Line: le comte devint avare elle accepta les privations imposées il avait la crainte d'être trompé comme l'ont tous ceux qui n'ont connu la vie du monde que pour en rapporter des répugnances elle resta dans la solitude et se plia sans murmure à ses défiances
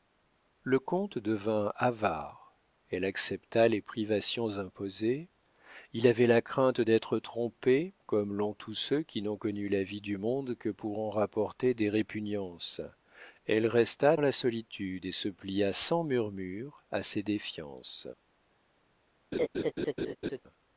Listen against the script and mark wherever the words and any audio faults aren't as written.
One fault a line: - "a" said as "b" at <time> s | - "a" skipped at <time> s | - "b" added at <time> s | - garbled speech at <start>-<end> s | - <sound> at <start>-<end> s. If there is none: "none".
- "dans" skipped at 14.1 s
- laugh at 19.3-20.4 s